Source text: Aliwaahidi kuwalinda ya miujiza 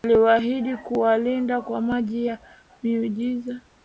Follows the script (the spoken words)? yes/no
no